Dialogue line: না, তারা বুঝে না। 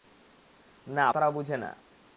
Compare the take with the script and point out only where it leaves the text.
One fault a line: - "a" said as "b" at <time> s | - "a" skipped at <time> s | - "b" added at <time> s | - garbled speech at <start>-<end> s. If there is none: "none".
none